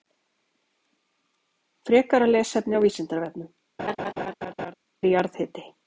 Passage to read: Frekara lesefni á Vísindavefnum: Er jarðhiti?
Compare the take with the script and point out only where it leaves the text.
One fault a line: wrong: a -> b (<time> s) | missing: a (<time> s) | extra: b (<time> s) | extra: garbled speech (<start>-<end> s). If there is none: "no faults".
no faults